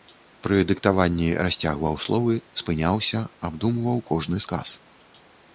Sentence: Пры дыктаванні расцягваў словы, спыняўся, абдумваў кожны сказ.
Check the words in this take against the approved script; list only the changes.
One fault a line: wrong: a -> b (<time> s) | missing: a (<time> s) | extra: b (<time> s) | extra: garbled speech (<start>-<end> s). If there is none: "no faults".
no faults